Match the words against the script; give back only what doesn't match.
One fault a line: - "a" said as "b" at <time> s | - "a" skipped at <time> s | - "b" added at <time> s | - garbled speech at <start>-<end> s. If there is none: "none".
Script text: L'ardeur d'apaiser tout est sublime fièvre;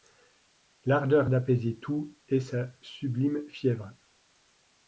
- "sa" added at 2.4 s